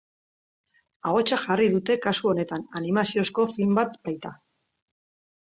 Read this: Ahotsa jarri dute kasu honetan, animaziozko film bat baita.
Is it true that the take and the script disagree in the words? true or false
false